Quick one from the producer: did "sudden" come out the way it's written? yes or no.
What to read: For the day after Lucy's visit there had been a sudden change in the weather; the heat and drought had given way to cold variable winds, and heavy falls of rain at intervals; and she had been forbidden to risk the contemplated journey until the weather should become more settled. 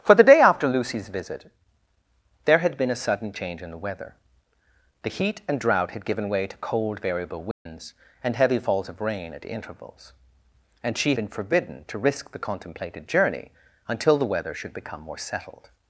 yes